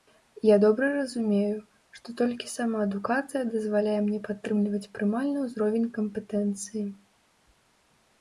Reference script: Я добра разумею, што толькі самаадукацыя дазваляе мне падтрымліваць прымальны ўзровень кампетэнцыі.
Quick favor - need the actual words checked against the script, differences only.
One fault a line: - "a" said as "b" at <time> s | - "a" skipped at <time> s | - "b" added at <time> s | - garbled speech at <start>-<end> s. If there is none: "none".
none